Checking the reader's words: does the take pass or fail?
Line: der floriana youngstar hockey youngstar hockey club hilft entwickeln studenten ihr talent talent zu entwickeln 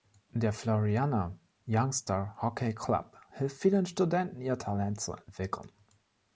fail